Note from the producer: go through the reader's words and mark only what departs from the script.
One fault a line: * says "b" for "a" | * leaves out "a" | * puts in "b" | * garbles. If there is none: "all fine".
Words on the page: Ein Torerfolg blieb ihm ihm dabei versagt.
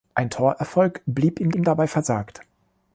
all fine